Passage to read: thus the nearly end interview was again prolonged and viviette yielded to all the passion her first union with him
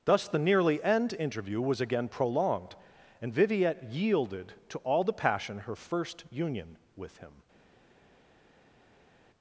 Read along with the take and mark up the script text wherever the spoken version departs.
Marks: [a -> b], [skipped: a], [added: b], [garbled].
thus the nearly end interview was again prolonged and viviette yielded to all the passion her first union with him